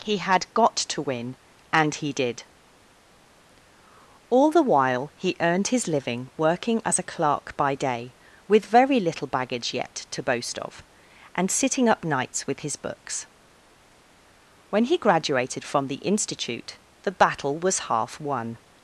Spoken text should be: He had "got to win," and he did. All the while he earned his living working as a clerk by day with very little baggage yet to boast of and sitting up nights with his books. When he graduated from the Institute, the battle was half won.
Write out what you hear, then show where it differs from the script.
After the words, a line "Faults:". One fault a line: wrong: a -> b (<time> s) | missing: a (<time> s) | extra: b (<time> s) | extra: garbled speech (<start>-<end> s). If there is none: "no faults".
He had "got to win," and he did. All the while he earned his living working as a clerk by day with very little baggage yet to boast of and sitting up nights with his books. When he graduated from the Institute, the battle was half won.
Faults:
no faults